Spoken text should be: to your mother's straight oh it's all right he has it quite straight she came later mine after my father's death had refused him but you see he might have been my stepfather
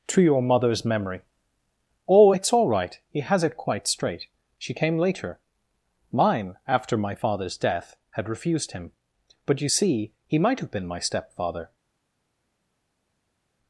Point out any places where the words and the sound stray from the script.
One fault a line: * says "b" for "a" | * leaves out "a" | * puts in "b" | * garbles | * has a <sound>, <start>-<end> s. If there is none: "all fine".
* says "memory" for "straight"